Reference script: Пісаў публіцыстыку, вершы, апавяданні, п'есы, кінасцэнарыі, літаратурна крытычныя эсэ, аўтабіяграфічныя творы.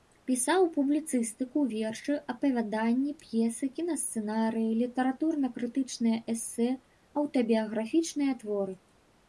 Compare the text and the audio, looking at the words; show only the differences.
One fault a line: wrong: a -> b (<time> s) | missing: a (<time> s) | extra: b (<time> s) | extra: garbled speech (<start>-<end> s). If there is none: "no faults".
no faults